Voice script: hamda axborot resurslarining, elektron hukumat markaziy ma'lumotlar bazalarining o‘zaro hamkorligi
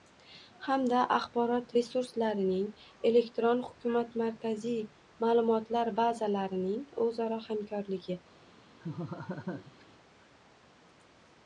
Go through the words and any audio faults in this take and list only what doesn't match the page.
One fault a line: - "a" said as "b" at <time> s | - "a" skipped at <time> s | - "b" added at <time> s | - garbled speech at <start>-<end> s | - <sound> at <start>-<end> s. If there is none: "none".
- laugh at 8.8-9.8 s